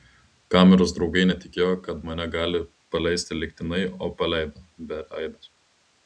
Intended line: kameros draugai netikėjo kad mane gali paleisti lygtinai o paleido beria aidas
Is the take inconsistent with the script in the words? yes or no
no